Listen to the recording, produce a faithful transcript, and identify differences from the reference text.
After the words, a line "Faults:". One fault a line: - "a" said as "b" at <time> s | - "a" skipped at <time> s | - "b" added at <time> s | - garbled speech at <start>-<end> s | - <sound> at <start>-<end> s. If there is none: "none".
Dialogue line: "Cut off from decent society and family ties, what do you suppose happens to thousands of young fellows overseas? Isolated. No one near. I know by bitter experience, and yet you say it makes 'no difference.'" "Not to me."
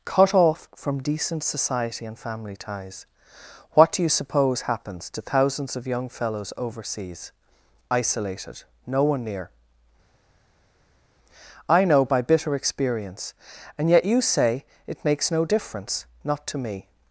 "Cut off from decent society and family ties, what do you suppose happens to thousands of young fellows overseas? Isolated. No one near. I know by bitter experience, and yet you say it makes 'no difference.'" "Not to me."
Faults:
none